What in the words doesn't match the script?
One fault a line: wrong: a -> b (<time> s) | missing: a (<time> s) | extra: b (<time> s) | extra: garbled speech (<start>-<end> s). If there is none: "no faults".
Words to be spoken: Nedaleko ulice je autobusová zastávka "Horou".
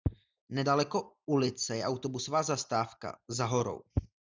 extra: Za (3.3 s)